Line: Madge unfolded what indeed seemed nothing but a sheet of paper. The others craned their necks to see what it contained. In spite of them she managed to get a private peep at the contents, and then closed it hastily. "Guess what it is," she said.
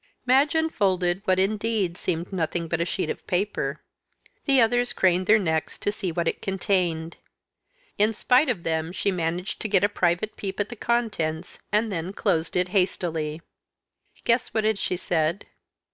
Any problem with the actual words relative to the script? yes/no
yes